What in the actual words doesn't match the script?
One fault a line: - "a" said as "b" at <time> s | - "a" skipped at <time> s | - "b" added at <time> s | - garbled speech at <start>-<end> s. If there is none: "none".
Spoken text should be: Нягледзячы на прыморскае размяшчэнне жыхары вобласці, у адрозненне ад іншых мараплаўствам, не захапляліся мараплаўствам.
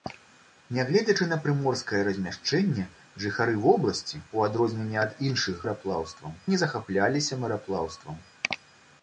none